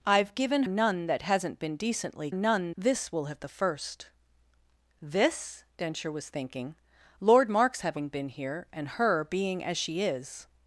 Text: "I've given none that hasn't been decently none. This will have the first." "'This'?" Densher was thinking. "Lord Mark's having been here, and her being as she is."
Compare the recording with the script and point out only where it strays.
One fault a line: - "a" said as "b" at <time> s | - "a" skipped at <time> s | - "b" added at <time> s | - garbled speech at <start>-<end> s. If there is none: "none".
none